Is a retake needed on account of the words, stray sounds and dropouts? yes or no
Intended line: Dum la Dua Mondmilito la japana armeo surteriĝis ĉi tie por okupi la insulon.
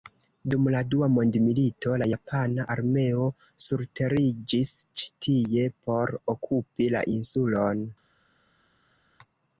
no